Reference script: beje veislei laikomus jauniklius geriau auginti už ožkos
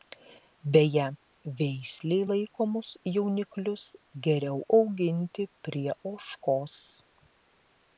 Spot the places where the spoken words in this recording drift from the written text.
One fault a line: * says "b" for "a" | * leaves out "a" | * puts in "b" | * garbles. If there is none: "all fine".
* says "prie" for "už"